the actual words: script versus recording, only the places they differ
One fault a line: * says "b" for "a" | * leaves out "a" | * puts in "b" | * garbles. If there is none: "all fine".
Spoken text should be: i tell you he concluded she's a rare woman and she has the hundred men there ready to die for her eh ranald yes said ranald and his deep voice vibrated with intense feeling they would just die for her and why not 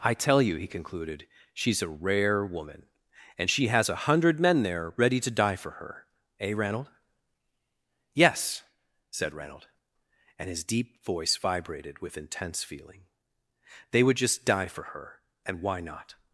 * says "a" for "the"